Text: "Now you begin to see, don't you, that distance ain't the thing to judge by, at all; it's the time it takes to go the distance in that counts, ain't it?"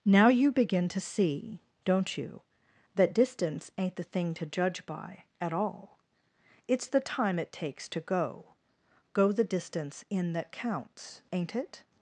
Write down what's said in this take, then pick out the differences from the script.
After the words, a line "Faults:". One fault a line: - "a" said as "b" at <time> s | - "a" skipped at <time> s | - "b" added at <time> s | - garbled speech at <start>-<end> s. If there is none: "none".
"Now you begin to see, don't you, that distance ain't the thing to judge by, at all; it's the time it takes to go go the distance in that counts, ain't it?"
Faults:
- "go" added at 9.1 s